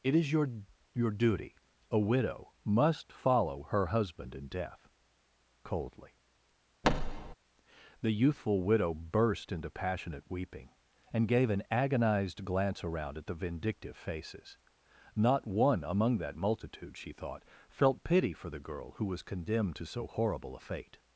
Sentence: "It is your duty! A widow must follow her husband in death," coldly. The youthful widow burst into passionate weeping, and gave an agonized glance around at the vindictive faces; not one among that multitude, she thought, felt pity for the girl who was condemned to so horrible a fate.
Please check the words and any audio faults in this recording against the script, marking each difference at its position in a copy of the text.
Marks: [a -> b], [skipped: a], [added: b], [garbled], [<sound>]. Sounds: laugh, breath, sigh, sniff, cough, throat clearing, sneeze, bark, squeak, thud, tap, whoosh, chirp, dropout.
"It is your [added: your] duty! A widow must follow her husband in death," coldly. [thud] The youthful widow burst into passionate weeping, and gave an agonized glance around at the vindictive faces; not one among that multitude, she thought, felt pity for the girl who was condemned to so horrible a fate.